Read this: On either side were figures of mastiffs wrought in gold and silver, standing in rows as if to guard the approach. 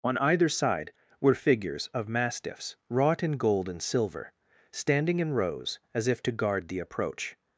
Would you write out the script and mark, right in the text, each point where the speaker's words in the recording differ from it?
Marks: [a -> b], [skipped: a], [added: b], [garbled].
On either side were figures of mastiffs wrought in gold and silver, standing in rows as if to guard the approach.